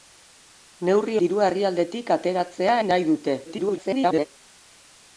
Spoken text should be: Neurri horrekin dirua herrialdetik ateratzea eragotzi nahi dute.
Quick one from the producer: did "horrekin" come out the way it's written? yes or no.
no